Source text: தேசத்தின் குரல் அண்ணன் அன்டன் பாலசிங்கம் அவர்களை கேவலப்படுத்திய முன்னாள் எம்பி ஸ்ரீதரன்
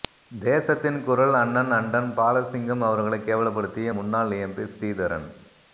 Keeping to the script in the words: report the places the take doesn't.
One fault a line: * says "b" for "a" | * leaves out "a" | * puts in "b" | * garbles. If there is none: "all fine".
all fine